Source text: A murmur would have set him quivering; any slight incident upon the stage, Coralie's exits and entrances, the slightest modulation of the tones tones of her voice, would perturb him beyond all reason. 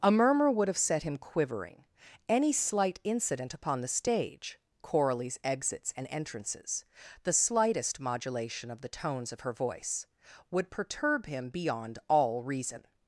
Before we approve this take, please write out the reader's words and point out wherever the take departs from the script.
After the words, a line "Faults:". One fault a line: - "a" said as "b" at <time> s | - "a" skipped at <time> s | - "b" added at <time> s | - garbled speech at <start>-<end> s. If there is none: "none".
A murmur would have set him quivering; any slight incident upon the stage, Coralie's exits and entrances, the slightest modulation of the tones of her voice, would perturb him beyond all reason.
Faults:
- "tones" skipped at 9.3 s